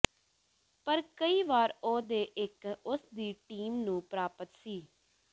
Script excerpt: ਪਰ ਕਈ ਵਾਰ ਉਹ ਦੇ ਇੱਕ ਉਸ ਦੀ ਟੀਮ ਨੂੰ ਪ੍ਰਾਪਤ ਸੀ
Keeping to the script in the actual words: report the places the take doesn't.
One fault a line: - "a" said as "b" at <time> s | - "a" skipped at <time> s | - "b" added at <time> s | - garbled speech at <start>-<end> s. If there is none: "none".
none